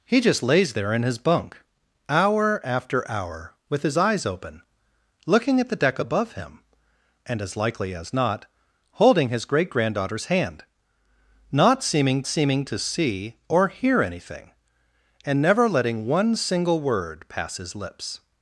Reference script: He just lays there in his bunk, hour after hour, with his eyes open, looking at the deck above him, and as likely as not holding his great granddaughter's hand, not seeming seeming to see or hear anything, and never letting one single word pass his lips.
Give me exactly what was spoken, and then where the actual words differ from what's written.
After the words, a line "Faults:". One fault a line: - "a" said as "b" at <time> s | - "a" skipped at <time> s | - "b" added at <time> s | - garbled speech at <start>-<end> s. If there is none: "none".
He just lays there in his bunk, hour after hour, with his eyes open, looking at the deck above him, and as likely as not holding his great granddaughter's hand, not seeming seeming to see or hear anything, and never letting one single word pass his lips.
Faults:
none